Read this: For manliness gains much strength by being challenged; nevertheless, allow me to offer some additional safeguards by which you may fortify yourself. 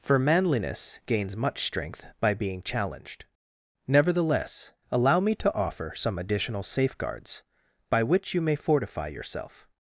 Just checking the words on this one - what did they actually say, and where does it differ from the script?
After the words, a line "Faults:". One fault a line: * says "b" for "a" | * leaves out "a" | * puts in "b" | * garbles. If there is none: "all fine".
For manliness gains much strength by being challenged; nevertheless, allow me to offer some additional safeguards by which you may fortify yourself.
Faults:
all fine